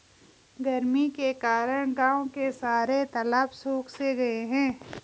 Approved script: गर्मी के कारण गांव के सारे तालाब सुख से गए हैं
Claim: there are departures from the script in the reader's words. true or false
false